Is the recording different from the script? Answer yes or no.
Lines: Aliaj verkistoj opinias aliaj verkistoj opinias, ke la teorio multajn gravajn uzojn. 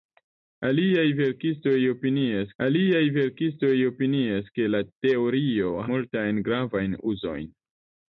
no